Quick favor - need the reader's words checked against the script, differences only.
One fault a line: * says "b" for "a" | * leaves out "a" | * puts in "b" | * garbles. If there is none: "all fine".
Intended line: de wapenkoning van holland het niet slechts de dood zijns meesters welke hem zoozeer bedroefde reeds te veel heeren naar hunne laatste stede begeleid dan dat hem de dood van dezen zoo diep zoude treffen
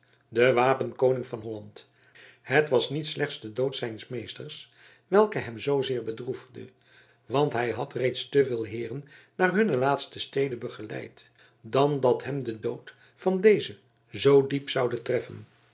* puts in "was"
* puts in "want hij had"